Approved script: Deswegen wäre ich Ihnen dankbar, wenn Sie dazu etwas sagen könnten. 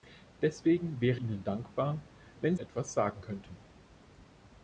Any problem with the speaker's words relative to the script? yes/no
yes